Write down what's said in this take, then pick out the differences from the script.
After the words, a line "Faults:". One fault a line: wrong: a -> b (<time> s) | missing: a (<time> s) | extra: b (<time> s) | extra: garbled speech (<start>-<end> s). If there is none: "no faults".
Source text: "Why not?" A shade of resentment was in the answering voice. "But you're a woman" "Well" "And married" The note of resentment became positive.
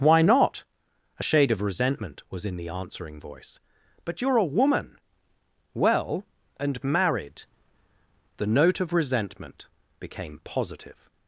"Why not?" A shade of resentment was in the answering voice. "But you're a woman" "Well" "And married" The note of resentment became positive.
Faults:
no faults